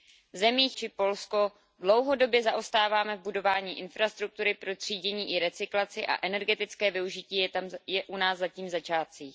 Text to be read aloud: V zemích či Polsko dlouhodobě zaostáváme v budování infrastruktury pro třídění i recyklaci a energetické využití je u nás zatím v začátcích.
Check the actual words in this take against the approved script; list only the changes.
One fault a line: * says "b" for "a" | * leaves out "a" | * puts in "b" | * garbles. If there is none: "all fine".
all fine